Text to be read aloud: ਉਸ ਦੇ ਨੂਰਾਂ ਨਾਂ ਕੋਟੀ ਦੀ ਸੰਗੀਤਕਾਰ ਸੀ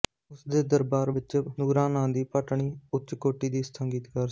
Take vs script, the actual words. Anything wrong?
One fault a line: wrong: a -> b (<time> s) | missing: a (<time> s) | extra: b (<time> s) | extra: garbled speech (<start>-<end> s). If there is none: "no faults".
extra: ਦਰਬਾਰ ਵਿੱਚ (0.7 s)
extra: ਦੀ ਭਟਣੀ ਉੱਚ (2.1 s)